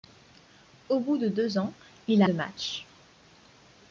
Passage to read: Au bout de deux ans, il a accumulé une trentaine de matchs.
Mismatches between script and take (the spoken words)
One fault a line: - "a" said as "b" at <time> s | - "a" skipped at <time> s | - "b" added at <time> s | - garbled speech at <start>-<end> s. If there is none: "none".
- "accumulé une trentaine" skipped at 2.3 s